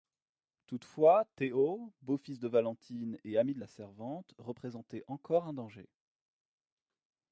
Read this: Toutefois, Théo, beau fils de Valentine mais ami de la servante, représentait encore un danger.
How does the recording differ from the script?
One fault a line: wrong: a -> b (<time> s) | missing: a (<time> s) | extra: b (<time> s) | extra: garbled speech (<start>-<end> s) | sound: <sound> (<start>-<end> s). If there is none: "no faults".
wrong: mais -> et (3.2 s)